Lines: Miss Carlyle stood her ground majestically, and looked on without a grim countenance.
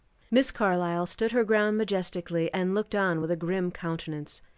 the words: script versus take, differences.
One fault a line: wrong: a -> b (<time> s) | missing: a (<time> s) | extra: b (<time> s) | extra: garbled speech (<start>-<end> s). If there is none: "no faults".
wrong: without -> with (3.2 s)